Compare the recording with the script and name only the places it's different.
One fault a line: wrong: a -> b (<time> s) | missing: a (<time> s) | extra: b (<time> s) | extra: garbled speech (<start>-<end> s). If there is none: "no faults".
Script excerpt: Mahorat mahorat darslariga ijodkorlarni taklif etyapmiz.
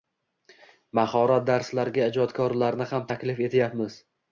missing: mahorat (1.5 s)
extra: ham (3.0 s)